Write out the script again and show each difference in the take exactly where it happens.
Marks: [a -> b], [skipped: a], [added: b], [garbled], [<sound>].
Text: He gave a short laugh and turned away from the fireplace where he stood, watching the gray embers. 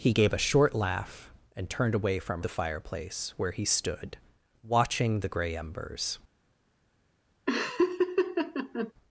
He gave a short laugh and turned away from the fireplace where he stood, watching the gray embers. [laugh]